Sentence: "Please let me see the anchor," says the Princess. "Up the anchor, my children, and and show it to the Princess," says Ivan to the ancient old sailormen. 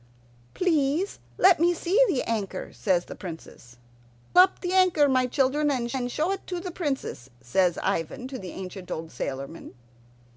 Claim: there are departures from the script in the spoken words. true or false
false